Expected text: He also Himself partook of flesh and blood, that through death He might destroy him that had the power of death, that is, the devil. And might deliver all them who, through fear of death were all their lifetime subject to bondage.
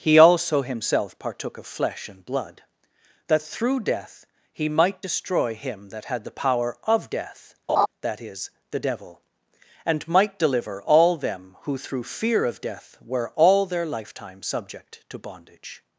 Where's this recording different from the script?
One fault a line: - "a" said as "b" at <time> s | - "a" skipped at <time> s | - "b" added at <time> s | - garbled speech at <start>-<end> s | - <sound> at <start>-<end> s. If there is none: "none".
- laugh at 7.7-7.9 s